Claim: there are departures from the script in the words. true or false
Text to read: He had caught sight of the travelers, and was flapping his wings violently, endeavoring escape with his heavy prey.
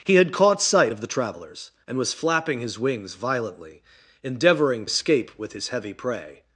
false